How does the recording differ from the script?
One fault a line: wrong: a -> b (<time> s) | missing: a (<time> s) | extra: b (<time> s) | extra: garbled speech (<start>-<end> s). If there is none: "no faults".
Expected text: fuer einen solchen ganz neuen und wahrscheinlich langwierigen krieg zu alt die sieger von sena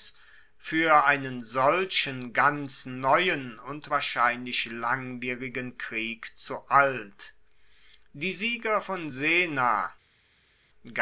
no faults